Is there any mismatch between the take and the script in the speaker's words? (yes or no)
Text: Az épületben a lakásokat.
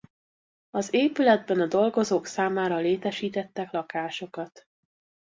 yes